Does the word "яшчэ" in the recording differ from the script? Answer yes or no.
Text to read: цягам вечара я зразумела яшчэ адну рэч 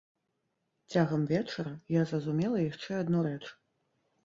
no